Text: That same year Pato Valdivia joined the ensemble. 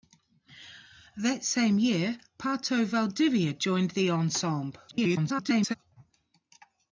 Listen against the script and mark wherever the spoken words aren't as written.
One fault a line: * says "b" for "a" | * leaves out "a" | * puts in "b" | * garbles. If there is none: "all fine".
* garbles